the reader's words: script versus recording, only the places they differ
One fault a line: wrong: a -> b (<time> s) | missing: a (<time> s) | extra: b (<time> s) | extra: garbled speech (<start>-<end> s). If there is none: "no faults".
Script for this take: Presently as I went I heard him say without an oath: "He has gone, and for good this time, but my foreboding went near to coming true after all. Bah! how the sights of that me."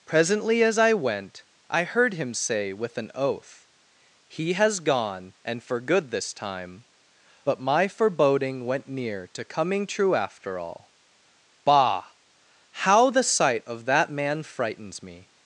wrong: without -> with (2.7 s)
wrong: sights -> sight (13.2 s)
extra: man frightens (14.1 s)